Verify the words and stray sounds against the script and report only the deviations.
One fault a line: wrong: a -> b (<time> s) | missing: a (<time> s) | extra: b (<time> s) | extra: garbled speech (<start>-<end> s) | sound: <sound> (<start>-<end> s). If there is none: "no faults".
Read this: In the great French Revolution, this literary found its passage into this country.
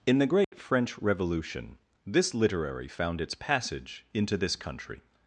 sound: dropout (0.4-0.5 s)